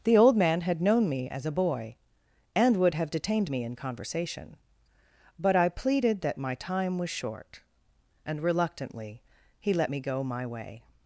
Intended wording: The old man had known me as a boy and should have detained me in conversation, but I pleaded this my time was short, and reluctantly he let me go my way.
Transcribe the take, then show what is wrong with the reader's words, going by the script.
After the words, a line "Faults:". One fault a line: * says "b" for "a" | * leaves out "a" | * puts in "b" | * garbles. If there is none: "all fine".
The old man had known me as a boy and would have detained me in conversation, but I pleaded that my time was short, and reluctantly he let me go my way.
Faults:
* says "would" for "should"
* says "that" for "this"